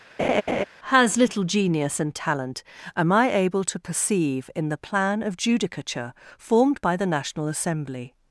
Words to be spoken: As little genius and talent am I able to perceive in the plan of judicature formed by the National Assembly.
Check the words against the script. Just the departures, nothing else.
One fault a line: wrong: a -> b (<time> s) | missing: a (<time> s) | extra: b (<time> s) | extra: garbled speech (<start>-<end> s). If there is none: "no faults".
wrong: As -> Has (0.9 s)